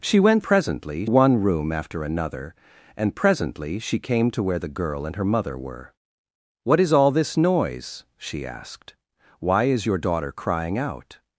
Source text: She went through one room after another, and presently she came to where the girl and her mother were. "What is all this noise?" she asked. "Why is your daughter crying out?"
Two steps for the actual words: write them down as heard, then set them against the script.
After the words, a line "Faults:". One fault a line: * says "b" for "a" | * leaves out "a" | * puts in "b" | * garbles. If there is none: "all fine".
She went presently one room after another, and presently she came to where the girl and her mother were. "What is all this noise?" she asked. "Why is your daughter crying out?"
Faults:
* says "presently" for "through"